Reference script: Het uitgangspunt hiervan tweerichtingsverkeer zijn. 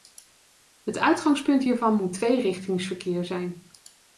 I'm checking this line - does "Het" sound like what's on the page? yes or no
yes